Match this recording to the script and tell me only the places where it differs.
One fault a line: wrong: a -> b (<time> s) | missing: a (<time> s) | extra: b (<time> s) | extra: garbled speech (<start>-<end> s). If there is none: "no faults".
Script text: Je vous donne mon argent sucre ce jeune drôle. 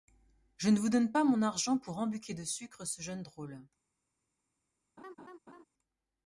extra: ne (0.7 s)
extra: pas (1.1 s)
extra: pour embucquer de (1.8 s)